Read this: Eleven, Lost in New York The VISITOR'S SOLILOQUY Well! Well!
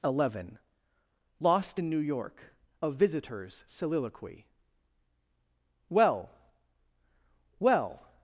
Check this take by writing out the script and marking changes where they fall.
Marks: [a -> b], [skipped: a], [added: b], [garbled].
Eleven, Lost in New York [The -> A] VISITOR'S SOLILOQUY Well! Well!